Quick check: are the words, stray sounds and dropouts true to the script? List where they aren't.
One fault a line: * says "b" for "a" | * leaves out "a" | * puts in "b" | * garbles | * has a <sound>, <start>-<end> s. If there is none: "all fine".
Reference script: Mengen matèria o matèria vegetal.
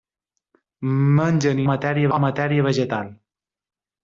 all fine